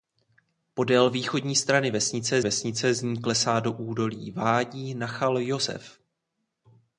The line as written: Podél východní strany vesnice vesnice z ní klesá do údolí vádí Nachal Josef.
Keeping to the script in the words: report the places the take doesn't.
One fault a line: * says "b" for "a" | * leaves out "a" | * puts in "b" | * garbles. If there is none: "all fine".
all fine